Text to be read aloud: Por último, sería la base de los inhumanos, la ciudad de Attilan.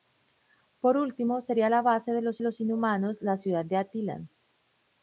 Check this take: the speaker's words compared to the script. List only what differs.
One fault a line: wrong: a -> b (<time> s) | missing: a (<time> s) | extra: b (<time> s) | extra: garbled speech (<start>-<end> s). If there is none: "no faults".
extra: los (2.4 s)